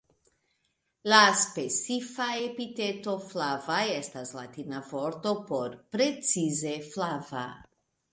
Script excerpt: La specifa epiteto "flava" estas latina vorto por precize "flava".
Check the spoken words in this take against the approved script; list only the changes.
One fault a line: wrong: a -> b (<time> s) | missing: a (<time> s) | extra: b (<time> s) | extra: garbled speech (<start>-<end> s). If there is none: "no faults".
no faults